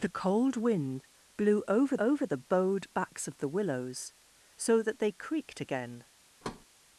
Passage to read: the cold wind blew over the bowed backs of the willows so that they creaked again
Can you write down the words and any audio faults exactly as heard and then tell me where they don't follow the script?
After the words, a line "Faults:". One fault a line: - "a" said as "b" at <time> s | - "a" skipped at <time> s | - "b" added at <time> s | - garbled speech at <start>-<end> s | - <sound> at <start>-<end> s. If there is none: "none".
the cold wind blew over over the bowed backs of the willows so that they creaked again
Faults:
- "over" added at 2.0 s
- thud at 6.4-6.7 s